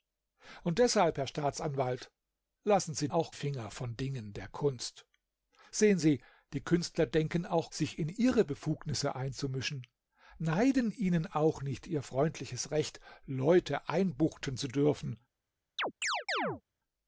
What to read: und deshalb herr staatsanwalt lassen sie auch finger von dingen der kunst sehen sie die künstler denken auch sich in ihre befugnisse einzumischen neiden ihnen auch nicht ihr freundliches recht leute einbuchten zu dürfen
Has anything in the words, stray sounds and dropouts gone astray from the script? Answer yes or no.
yes